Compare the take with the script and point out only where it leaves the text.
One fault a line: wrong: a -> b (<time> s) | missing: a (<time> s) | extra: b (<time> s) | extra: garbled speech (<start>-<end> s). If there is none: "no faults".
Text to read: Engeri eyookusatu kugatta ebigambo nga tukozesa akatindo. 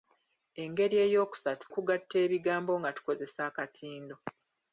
no faults